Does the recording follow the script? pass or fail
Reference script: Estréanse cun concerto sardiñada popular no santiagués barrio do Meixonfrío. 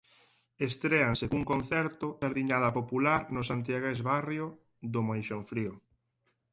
pass